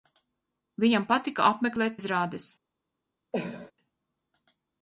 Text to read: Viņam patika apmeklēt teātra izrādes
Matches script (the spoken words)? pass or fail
fail